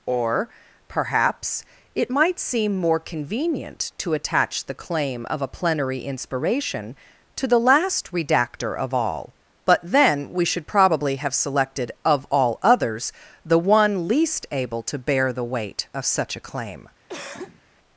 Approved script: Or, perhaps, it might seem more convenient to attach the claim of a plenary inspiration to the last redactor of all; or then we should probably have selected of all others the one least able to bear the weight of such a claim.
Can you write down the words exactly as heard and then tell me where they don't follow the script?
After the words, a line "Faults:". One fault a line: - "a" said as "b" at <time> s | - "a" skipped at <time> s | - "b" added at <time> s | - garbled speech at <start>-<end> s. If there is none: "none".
Or, perhaps, it might seem more convenient to attach the claim of a plenary inspiration to the last redactor of all; but then we should probably have selected of all others the one least able to bear the weight of such a claim.
Faults:
- "or" said as "but" at 9.6 s